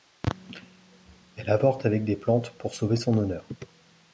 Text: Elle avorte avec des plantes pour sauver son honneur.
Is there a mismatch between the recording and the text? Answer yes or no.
no